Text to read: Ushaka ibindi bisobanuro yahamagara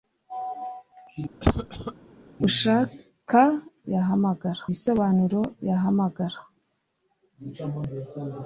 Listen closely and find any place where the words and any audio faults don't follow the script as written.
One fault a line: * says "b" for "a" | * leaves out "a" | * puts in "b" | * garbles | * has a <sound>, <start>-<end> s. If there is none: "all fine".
* has a cough, 1.4-1.9 s
* says "yahamagara" for "ibindi"